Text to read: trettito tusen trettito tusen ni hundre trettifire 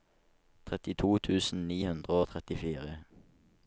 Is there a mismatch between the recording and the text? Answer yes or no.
yes